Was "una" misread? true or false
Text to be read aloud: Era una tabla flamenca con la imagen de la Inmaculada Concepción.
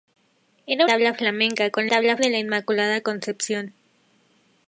true